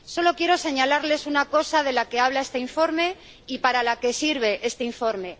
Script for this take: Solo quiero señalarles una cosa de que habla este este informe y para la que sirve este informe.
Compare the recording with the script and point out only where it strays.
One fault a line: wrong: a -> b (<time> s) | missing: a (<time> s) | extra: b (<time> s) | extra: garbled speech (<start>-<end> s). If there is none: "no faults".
extra: la (1.9 s)
missing: este (2.6 s)